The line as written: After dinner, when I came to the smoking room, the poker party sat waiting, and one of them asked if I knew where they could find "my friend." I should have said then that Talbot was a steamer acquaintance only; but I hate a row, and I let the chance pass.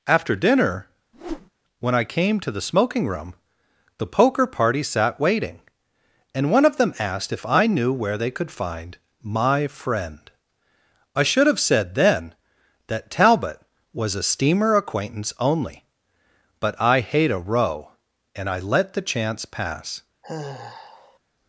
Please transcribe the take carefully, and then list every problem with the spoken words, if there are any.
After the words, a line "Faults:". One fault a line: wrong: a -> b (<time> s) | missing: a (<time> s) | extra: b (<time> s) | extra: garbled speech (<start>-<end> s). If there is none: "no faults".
After dinner, when I came to the smoking room, the poker party sat waiting, and one of them asked if I knew where they could find "my friend." I should have said then that Talbot was a steamer acquaintance only; but I hate a row, and I let the chance pass.
Faults:
no faults